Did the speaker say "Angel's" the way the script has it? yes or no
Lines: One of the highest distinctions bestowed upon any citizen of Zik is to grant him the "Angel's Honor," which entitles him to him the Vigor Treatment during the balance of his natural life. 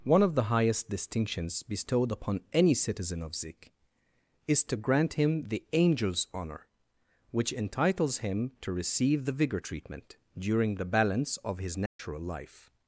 yes